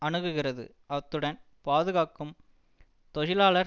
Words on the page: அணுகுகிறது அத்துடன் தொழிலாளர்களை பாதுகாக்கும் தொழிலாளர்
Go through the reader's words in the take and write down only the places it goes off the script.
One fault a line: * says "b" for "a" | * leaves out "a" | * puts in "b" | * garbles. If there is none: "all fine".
* leaves out "தொழிலாளர்களை"